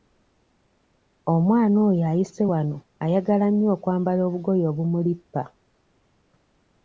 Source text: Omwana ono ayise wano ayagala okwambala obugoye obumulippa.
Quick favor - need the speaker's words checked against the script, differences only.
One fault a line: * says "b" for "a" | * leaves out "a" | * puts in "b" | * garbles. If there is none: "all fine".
* says "oyo" for "ono"
* puts in "nnyo"